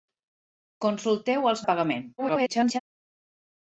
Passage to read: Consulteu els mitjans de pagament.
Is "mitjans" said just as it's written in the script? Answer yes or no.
no